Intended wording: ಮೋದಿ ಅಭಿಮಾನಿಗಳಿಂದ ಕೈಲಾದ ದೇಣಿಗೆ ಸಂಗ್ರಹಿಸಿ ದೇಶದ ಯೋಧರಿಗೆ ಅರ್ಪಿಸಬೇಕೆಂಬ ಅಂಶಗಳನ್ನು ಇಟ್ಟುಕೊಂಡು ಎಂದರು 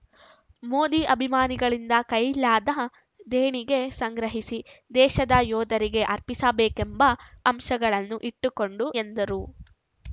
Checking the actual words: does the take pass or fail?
pass